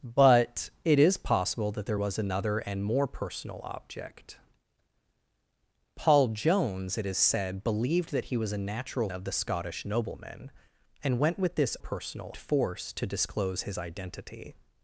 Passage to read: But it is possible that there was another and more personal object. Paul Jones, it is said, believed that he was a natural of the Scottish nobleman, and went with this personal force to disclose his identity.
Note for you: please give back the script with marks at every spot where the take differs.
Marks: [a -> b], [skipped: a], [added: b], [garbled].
But it is possible that there was another and more personal object. Paul Jones, it is said, believed that he was a natural of the Scottish nobleman, and went with this personal force to disclose his identity.